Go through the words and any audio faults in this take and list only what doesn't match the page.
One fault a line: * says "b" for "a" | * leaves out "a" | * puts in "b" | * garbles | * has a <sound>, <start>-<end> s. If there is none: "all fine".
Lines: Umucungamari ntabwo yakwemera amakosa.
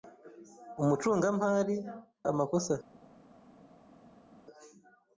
* leaves out "ntabwo yakwemera"